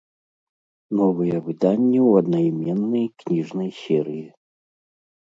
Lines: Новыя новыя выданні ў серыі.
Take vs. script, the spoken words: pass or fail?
fail